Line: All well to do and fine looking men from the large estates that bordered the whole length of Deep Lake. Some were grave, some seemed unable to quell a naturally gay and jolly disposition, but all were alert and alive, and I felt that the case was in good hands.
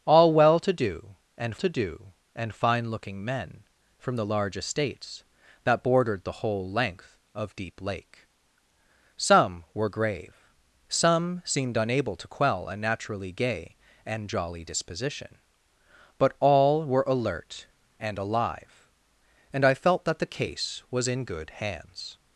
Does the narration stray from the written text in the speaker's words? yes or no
yes